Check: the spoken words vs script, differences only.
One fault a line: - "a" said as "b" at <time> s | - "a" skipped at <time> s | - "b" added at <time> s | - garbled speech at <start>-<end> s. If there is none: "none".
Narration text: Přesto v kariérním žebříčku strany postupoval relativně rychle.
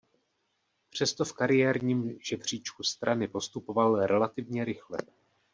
none